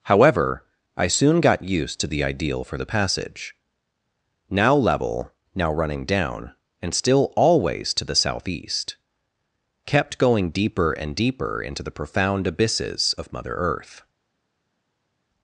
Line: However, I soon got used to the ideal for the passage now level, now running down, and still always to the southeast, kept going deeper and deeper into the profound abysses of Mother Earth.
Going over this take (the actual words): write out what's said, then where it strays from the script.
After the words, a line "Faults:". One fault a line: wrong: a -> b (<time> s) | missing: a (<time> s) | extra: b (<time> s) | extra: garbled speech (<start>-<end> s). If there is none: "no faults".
However, I soon got used to the ideal for the passage now level, now running down, and still always to the southeast, kept going deeper and deeper into the profound abysses of Mother Earth.
Faults:
no faults